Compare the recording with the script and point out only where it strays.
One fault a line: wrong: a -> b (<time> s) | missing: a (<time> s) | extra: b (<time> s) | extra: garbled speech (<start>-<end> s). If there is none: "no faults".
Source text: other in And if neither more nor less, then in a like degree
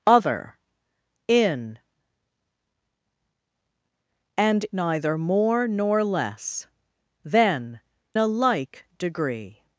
missing: if (4.7 s)
missing: in (7.8 s)